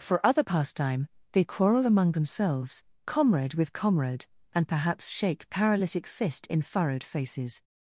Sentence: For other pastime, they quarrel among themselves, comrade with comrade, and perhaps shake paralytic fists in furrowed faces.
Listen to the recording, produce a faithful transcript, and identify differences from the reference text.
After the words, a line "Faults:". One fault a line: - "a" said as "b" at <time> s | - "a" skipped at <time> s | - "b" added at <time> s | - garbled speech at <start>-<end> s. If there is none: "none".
For other pastime, they quarrel among themselves, comrade with comrade, and perhaps shake paralytic fist in furrowed faces.
Faults:
- "fists" said as "fist" at 6.1 s